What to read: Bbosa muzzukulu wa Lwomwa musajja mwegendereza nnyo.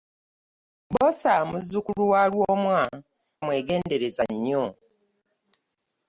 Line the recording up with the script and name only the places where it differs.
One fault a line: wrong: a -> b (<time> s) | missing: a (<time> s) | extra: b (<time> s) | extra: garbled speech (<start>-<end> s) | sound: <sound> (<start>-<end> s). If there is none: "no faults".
missing: musajja (2.8 s)